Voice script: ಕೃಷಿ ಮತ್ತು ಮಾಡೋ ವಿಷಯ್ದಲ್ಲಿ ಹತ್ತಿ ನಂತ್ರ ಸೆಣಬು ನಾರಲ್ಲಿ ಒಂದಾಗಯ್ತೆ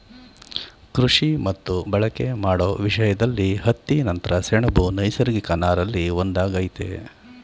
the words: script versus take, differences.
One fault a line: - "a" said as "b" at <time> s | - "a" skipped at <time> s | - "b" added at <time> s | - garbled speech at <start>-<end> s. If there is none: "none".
- "ಬಳಕೆ" added at 1.9 s
- "ನೈಸರ್ಗಿಕ" added at 5.0 s